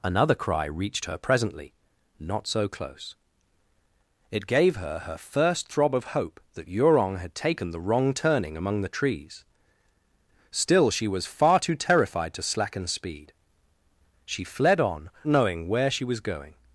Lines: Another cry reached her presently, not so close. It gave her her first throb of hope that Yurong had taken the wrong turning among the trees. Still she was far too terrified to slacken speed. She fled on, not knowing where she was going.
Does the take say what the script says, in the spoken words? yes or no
no